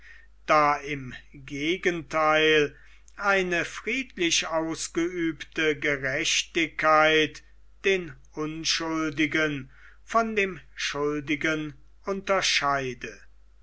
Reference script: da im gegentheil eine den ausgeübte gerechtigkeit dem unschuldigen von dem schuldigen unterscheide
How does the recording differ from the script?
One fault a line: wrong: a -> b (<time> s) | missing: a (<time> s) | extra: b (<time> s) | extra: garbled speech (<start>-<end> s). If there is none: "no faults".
wrong: den -> friedlich (3.6 s)
wrong: dem -> den (7.8 s)